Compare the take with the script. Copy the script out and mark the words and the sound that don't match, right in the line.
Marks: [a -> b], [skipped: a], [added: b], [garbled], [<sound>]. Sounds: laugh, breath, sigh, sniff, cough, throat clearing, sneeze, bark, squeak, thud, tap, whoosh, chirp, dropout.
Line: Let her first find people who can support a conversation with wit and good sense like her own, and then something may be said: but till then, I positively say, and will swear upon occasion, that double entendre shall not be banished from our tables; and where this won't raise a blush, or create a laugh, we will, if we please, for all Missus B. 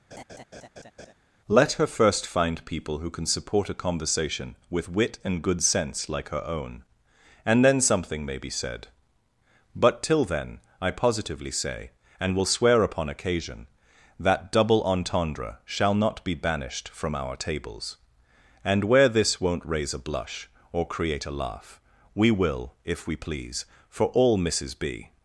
[laugh] Let her first find people who can support a conversation with wit and good sense like her own, and then something may be said: but till then, I positively say, and will swear upon occasion, that double entendre shall not be banished from our tables; and where this won't raise a blush, or create a laugh, we will, if we please, for all Missus B.